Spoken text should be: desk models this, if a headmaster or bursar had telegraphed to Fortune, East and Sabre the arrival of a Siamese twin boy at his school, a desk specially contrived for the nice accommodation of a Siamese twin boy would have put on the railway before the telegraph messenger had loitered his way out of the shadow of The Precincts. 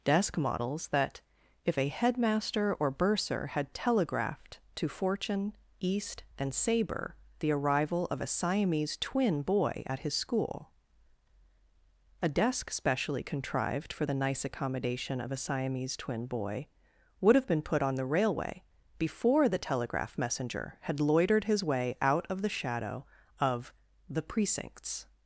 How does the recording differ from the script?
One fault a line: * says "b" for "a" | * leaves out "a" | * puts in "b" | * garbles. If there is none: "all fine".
* says "that" for "this"
* puts in "been"